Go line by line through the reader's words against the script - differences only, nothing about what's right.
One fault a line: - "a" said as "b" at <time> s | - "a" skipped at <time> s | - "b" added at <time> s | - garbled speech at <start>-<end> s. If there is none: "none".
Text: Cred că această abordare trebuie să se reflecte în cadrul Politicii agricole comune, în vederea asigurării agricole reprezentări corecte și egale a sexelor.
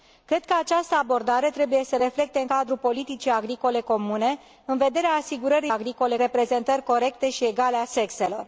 none